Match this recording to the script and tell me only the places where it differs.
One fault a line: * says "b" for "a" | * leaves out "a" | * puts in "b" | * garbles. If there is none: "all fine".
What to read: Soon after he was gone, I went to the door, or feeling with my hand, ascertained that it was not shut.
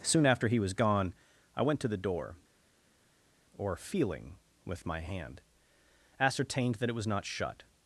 all fine